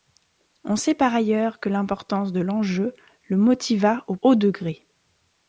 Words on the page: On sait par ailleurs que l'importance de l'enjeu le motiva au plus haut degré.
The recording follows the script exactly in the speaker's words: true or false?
false